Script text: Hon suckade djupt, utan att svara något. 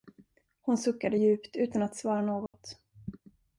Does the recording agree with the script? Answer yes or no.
yes